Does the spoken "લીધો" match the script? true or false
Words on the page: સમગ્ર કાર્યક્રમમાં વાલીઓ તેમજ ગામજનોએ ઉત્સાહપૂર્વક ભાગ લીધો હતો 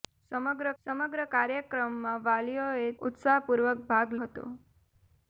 false